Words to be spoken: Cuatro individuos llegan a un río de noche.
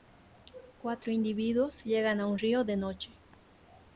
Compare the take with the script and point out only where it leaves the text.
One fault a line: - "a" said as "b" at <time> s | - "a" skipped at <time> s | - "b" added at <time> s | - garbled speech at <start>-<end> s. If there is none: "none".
none